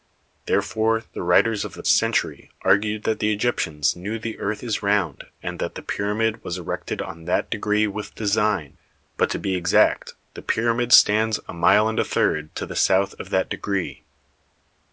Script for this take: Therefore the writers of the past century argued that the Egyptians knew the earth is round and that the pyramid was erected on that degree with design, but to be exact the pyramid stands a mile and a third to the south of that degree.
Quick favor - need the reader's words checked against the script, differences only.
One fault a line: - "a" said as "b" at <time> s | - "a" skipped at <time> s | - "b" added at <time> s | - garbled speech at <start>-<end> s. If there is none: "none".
- "past" skipped at 1.8 s